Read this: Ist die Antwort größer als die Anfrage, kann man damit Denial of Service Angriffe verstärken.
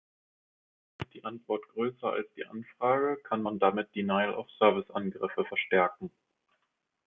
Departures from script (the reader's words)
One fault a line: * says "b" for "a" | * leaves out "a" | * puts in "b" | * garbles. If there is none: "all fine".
all fine